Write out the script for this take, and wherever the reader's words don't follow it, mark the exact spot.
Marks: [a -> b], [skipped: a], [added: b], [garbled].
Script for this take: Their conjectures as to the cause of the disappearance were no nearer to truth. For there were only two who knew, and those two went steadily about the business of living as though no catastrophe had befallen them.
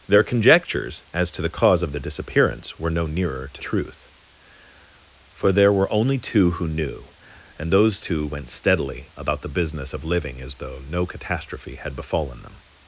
Their conjectures as to the cause of the disappearance were no nearer to truth. For there were only two who knew, and those two went steadily about the business of living as though no catastrophe had befallen them.